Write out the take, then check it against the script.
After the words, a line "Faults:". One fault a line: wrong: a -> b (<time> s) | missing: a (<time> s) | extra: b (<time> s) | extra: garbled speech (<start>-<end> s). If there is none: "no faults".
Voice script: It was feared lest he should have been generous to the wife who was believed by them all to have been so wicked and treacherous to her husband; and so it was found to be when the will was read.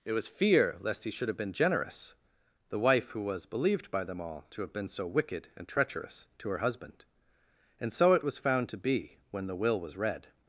It was fear lest he should have been generous the wife who was believed by them all to have been so wicked and treacherous to her husband; and so it was found to be when the will was read.
Faults:
wrong: feared -> fear (0.3 s)
missing: to (2.1 s)